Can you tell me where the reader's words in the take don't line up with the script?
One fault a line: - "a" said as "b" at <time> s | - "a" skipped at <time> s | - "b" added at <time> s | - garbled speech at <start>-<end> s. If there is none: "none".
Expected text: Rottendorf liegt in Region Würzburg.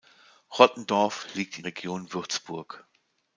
none